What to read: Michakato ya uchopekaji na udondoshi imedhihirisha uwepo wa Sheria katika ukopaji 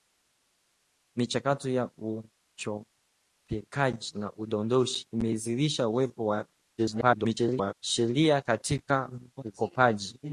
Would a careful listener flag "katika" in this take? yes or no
no